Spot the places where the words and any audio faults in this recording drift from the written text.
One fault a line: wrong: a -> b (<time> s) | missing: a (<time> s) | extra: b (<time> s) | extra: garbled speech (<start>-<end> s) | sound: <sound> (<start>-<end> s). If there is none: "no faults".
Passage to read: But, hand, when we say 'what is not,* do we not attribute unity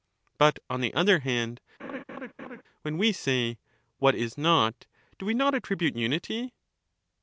extra: on the other (0.7 s)
sound: laugh (1.8-2.6 s)